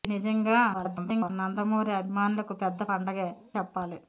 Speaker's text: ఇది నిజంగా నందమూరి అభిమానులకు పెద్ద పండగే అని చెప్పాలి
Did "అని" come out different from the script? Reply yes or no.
yes